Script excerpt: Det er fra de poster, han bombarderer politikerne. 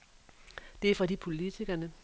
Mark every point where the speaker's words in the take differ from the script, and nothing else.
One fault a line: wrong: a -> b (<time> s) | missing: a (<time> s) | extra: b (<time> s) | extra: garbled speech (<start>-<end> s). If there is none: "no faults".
missing: poster han bombarderer (1.2 s)